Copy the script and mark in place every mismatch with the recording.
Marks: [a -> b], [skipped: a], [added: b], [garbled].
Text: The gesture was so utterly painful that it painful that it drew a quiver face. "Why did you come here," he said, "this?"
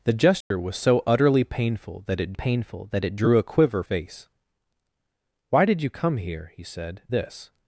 The gesture was so utterly painful that it painful that it drew a quiver face. "Why did you come here," he said, "this?"